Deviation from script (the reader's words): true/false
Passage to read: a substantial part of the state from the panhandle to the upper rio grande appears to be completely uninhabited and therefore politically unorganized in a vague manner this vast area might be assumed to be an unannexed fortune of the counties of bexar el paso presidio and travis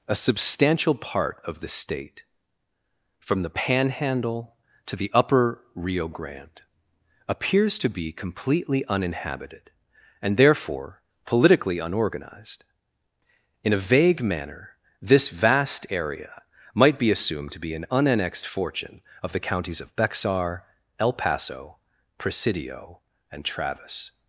false